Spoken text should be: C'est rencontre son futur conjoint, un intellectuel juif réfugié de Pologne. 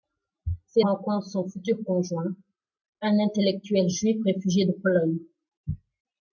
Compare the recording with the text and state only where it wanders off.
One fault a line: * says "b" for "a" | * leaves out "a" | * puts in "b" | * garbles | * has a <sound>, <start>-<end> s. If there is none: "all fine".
all fine